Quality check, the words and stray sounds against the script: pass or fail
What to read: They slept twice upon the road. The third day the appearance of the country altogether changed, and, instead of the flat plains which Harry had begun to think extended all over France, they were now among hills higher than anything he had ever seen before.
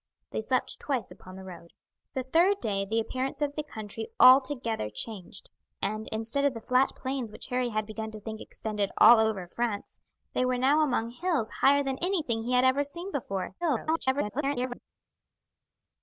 fail